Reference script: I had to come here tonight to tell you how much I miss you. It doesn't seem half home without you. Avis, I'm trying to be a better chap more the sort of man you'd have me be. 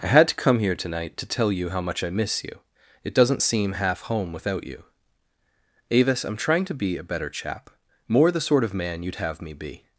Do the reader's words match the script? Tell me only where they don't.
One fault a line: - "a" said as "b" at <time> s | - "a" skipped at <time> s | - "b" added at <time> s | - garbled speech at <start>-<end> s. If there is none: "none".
none